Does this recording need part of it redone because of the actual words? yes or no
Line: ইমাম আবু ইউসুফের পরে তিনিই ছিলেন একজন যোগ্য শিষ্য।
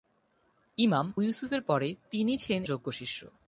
yes